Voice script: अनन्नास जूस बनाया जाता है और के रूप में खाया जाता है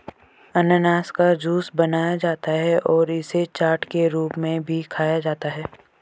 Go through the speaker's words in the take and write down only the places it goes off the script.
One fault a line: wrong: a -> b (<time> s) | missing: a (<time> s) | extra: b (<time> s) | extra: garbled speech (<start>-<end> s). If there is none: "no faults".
extra: का (1.1 s)
extra: इसे चाट (3.1 s)
extra: भी (4.6 s)